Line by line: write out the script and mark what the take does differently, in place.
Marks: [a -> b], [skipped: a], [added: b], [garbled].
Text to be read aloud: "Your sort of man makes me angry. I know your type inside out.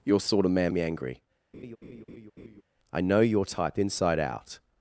"Your sort of man [skipped: makes] me angry. I know your type inside out.